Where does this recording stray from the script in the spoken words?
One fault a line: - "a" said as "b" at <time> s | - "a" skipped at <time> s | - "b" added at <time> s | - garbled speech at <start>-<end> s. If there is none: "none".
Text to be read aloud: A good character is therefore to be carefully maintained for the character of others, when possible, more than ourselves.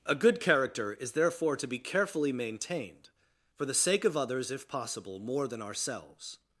- "character" said as "sake" at 3.7 s
- "when" said as "if" at 4.5 s